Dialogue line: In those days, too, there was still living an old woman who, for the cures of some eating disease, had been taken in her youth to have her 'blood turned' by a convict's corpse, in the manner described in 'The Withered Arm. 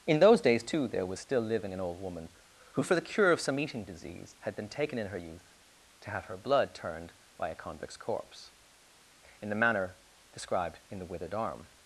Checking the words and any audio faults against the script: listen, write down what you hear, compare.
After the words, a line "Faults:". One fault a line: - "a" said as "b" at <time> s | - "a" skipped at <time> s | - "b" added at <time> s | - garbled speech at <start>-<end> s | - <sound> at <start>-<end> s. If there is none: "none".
In those days, too, there was still living an old woman who, for the cure of some eating disease, had been taken in her youth to have her 'blood turned' by a convict's corpse, in the manner described in 'The Withered Arm.
Faults:
- "cures" said as "cure" at 3.0 s